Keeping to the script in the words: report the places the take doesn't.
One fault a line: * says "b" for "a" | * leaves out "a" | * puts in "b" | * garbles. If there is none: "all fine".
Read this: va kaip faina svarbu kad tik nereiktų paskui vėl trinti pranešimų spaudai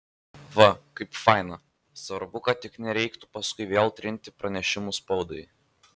all fine